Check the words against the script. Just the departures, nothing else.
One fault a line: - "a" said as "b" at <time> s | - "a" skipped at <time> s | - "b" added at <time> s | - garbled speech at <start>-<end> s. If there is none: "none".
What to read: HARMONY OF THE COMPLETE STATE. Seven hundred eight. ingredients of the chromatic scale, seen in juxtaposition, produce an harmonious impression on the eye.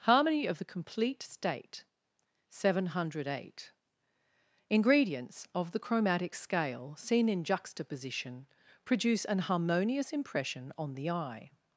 none